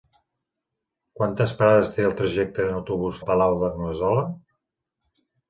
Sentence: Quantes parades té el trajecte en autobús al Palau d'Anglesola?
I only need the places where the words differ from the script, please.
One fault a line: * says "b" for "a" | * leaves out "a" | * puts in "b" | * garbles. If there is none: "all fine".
all fine